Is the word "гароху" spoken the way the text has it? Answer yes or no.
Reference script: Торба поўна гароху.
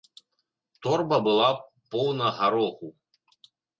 yes